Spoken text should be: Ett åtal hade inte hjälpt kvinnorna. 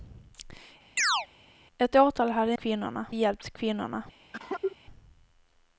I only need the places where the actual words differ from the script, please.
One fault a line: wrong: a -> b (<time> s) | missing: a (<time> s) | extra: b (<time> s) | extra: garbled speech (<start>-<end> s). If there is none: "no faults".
wrong: inte -> kvinnorna (2.5 s)